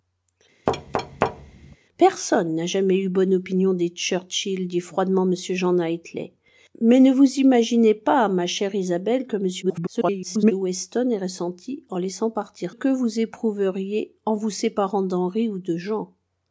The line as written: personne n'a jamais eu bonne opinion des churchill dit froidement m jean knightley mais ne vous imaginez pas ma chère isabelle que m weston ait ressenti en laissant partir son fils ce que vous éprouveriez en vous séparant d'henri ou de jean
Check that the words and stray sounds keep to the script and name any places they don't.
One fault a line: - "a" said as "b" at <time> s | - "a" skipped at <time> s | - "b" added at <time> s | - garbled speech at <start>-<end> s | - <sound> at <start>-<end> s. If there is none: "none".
- thud at 0.7-1.8 s
- garbled speech at 9.6-10.5 s
- "son fils ce" skipped at 12.8 s